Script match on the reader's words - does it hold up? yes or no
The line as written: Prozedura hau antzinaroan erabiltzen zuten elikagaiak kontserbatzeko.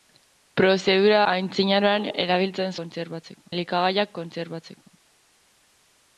no